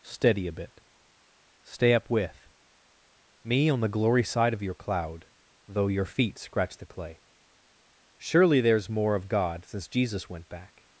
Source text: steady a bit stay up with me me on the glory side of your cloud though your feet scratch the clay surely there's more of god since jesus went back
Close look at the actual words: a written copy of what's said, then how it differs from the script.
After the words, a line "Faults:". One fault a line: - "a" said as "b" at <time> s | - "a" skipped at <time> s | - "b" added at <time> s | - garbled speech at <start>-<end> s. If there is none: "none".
steady a bit stay up with me on the glory side of your cloud though your feet scratch the clay surely there's more of god since jesus went back
Faults:
- "me" skipped at 3.7 s